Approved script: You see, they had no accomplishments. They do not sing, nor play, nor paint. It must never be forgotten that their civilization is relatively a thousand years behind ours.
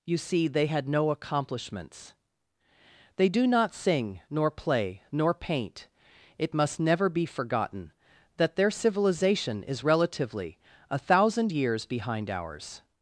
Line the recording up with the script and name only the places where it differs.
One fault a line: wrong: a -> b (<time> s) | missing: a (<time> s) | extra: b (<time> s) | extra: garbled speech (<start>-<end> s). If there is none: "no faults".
no faults